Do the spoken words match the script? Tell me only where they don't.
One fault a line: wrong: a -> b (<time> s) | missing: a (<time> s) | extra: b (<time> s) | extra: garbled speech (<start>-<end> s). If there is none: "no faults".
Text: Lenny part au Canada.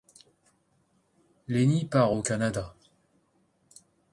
no faults